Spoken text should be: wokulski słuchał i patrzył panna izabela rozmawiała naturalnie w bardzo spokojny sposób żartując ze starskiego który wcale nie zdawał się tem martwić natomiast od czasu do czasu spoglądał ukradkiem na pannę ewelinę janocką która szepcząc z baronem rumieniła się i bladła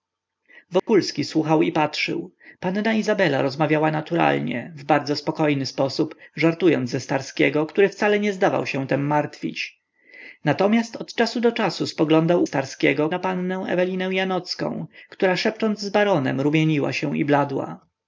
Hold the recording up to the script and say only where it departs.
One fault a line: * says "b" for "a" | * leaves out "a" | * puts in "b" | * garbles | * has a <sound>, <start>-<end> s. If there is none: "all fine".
* has a dropout, 0.8-0.9 s
* says "starskiego" for "ukradkiem"